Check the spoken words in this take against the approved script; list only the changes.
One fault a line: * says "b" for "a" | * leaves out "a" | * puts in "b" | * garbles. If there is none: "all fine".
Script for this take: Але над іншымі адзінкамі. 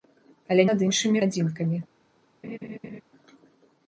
all fine